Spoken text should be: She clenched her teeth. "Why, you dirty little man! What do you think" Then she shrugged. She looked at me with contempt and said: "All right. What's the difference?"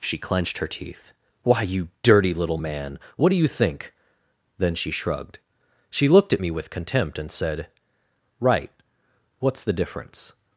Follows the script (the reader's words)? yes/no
no